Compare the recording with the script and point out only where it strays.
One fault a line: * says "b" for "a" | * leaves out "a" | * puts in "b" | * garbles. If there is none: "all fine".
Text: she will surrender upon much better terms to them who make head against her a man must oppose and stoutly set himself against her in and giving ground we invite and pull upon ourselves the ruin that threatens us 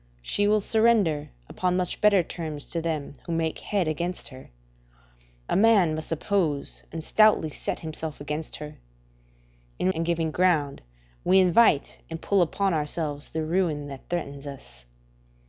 all fine